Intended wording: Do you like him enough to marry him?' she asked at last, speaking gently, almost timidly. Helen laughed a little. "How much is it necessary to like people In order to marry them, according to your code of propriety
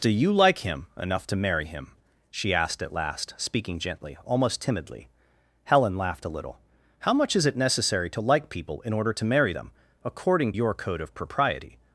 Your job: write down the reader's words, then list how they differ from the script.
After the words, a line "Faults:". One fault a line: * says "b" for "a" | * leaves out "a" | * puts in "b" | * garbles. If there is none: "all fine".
Do you like him enough to marry him?' she asked at last, speaking gently, almost timidly. Helen laughed a little. "How much is it necessary to like people In order to marry them, according your code of propriety
Faults:
* leaves out "to"